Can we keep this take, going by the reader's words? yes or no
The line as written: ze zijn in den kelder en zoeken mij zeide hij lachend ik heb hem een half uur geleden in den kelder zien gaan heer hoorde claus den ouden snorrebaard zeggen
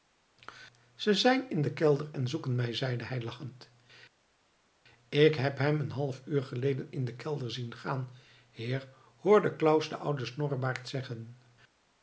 yes